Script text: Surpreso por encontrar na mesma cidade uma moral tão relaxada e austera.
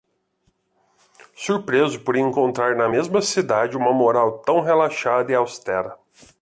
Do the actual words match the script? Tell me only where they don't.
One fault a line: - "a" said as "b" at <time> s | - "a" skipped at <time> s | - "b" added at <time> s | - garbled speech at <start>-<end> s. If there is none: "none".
none